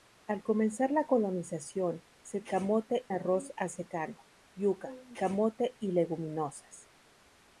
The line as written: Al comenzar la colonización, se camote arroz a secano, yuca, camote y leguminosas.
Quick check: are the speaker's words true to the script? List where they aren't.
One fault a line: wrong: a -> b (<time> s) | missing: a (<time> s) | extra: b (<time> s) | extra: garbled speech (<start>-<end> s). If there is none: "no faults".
no faults